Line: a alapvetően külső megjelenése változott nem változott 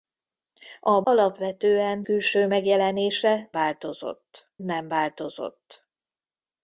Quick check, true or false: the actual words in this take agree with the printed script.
true